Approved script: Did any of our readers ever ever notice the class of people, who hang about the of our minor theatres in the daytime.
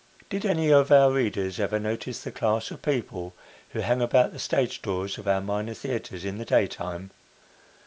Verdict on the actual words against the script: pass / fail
fail